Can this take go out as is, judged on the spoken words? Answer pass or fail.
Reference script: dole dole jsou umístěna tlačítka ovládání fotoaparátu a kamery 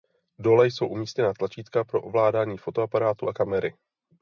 fail